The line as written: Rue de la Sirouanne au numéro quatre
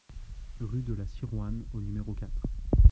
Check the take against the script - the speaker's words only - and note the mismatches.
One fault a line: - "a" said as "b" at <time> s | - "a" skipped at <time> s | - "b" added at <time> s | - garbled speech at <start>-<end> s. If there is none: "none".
none